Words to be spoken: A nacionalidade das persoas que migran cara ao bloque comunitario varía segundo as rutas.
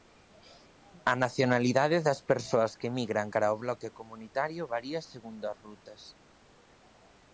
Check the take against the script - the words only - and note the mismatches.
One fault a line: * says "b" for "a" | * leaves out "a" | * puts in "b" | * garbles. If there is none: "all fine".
all fine